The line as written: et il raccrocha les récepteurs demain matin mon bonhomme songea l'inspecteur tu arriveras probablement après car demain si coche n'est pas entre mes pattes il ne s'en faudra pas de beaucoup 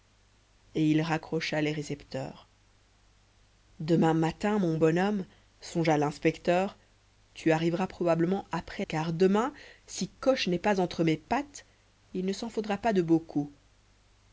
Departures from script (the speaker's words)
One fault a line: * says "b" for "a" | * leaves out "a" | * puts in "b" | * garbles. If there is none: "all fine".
all fine